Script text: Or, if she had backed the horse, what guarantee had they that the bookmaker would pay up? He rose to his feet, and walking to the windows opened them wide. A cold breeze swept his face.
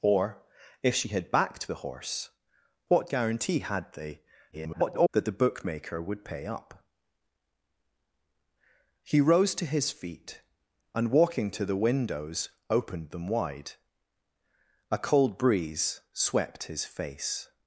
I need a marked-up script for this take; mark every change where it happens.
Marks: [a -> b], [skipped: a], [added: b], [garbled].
Or, if she had backed the horse, what guarantee had they [garbled] that the bookmaker would pay up? He rose to his feet, and walking to the windows opened them wide. A cold breeze swept his face.